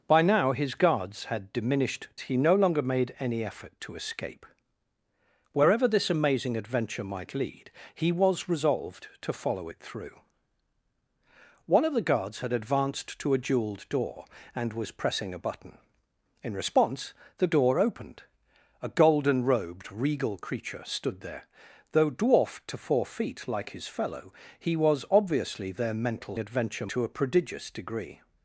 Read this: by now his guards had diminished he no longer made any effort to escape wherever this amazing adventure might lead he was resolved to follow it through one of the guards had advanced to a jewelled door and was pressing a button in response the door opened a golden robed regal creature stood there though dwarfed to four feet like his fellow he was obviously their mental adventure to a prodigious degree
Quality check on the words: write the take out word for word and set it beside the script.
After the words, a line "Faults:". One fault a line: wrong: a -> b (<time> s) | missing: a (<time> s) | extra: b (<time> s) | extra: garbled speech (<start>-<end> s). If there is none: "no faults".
by now his guards had diminished he no longer made any effort to escape wherever this amazing adventure might lead he was resolved to follow it through one of the guards had advanced to a jewelled door and was pressing a button in response the door opened a golden robed regal creature stood there though dwarfed to four feet like his fellow he was obviously their mental adventure to a prodigious degree
Faults:
no faults